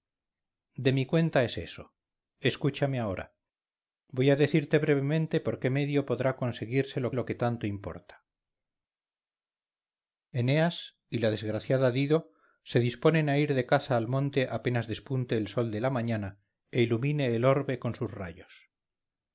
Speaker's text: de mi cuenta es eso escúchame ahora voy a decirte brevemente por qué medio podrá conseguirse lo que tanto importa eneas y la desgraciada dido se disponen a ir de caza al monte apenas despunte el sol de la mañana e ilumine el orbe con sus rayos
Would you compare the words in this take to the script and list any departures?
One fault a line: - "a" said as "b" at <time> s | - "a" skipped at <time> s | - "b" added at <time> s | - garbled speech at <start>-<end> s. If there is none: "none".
- "lo" added at 7.1 s